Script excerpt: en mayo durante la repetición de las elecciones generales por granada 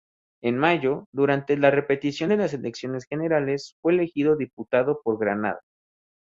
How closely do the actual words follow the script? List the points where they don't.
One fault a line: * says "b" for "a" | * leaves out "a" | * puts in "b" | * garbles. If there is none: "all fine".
* puts in "fue elegido diputado"